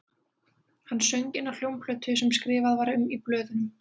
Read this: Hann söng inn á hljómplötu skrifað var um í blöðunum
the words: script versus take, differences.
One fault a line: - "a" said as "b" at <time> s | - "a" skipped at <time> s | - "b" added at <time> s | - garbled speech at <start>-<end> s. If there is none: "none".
- "sem" added at 2.2 s